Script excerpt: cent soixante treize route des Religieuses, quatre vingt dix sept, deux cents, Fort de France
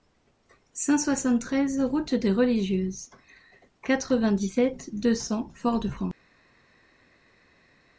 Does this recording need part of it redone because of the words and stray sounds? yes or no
no